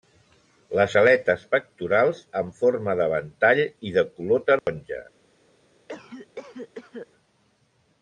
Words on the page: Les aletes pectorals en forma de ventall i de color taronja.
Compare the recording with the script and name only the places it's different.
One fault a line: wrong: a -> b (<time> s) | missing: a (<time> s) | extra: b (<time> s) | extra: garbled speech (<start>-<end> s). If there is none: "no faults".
no faults